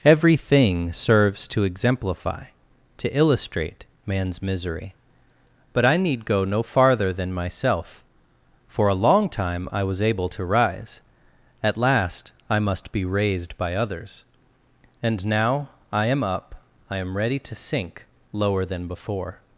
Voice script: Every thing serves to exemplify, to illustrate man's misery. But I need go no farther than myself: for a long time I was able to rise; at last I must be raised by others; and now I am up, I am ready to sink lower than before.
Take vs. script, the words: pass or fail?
pass